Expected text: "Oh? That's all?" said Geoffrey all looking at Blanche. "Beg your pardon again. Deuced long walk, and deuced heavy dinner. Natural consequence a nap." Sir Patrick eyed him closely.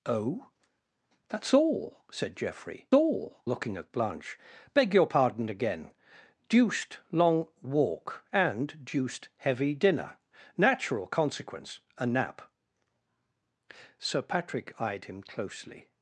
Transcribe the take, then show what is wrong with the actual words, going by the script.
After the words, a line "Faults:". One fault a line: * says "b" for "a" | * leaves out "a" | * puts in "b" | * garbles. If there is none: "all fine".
"Oh? That's all?" said Geoffrey all looking at Blanche. "Beg your pardon again. Deuced long walk, and deuced heavy dinner. Natural consequence a nap." Sir Patrick eyed him closely.
Faults:
all fine